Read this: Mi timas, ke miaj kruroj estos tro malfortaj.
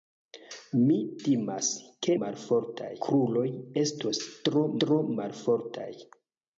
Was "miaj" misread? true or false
true